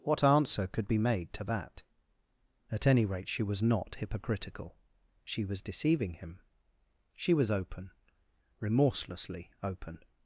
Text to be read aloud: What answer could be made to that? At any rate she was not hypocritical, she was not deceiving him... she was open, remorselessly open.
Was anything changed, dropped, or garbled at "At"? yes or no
no